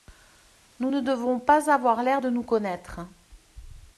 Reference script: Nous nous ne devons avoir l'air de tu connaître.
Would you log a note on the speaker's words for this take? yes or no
yes